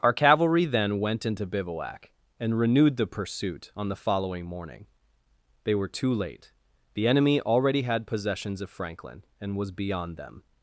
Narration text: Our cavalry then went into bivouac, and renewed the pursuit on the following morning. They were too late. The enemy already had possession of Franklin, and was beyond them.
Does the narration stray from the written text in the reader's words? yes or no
yes